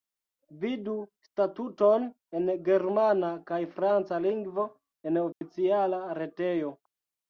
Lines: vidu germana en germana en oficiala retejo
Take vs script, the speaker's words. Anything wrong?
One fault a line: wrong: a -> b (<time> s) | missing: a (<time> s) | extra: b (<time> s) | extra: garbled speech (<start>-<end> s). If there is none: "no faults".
wrong: germana -> statuton (1.3 s)
extra: kaj franca lingvo (3.5 s)